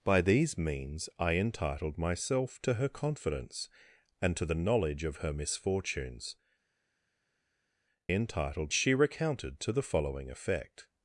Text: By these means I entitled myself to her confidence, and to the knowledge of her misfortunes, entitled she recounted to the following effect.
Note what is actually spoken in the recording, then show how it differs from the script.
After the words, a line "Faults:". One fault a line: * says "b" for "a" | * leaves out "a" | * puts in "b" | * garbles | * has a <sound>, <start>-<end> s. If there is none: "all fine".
By these means I entitled myself to her confidence, and to the knowledge of her misfortunes, entitled she recounted to the following effect.
Faults:
all fine